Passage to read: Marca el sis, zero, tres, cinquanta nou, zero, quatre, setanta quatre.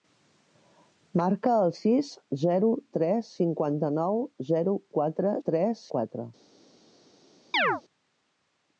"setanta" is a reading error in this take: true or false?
true